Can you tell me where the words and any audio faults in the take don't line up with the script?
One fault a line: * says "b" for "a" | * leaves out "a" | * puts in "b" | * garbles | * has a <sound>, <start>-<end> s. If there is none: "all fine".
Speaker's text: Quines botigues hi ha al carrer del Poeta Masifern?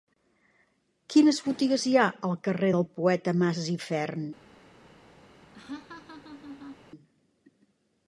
* has a laugh, 5.5-6.8 s